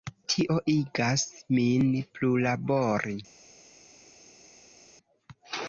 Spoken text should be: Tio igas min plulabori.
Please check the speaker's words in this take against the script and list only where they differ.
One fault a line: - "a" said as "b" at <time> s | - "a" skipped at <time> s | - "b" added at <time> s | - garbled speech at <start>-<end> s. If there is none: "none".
none